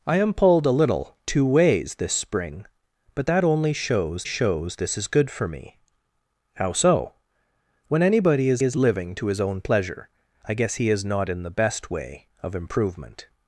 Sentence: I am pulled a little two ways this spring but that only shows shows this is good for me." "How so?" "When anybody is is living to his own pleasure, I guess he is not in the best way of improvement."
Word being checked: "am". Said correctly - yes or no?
yes